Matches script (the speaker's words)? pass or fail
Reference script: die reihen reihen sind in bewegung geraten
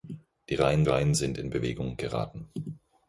pass